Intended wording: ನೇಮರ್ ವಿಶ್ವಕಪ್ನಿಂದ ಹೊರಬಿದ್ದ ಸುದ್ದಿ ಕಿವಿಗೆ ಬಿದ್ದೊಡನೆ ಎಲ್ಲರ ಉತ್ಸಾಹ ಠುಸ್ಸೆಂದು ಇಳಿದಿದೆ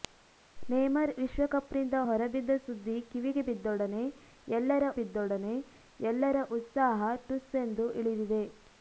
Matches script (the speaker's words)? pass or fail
fail